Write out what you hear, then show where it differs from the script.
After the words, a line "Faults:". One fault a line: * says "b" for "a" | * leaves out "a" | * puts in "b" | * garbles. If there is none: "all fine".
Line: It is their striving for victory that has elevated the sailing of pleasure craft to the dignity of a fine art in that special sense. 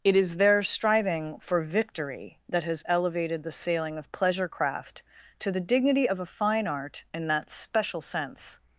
It is their striving for victory that has elevated the sailing of pleasure craft to the dignity of a fine art in that special sense.
Faults:
all fine